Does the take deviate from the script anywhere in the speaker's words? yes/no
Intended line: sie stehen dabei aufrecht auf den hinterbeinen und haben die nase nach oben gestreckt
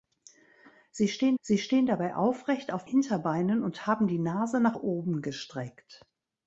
yes